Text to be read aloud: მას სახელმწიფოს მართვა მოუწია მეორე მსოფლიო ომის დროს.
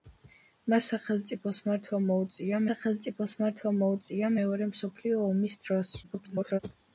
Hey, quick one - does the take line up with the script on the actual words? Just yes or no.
no